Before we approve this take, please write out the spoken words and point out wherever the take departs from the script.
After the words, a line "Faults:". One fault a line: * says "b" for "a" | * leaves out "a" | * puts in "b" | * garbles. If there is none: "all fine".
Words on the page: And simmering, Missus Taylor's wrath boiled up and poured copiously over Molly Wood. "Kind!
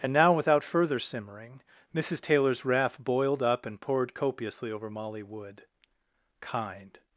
And now without further simmering, Missus Taylor's wrath boiled up and poured copiously over Molly Wood. "Kind!
Faults:
* puts in "now without further"